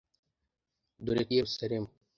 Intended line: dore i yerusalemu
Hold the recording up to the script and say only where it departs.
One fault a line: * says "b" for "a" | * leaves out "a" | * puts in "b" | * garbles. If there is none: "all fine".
all fine